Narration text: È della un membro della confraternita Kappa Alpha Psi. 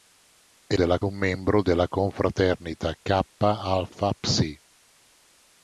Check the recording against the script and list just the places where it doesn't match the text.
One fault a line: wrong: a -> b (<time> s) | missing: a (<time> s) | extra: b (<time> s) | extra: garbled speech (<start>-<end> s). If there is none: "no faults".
no faults